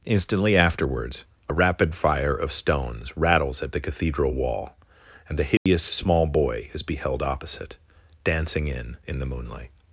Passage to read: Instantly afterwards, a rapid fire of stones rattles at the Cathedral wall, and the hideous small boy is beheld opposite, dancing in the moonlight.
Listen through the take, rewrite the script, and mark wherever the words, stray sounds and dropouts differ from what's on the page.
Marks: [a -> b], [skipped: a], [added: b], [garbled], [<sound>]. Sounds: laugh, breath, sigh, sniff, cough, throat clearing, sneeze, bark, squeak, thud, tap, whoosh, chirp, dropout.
Instantly afterwards, a rapid fire of stones rattles at the Cathedral wall, and the hideous [dropout] small boy is beheld opposite, dancing in [added: in] the moonlight.